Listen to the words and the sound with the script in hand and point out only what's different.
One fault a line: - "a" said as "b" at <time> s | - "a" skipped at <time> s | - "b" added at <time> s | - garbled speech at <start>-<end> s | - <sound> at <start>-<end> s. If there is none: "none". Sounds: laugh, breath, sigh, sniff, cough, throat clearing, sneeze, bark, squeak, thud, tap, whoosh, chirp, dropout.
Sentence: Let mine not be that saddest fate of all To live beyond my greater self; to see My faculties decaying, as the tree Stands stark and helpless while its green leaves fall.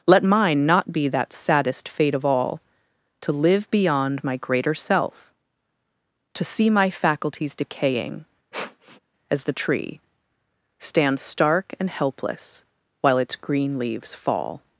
- sniff at 8.5-9.0 s